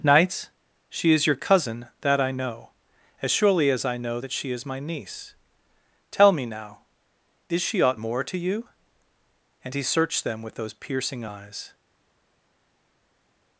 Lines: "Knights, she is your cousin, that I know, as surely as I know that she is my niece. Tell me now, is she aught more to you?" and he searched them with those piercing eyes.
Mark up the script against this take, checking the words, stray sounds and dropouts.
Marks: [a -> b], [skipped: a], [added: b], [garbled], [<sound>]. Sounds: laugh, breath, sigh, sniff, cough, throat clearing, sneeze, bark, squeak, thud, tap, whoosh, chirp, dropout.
"Knights, she is your cousin, that I know, as surely as I know that she is my niece. Tell me now, is she aught more to you?" and he searched them with those piercing eyes.